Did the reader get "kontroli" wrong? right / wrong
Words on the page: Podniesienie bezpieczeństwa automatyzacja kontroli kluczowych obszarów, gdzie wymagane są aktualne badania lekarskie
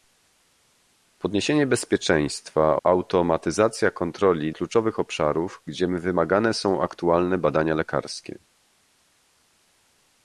right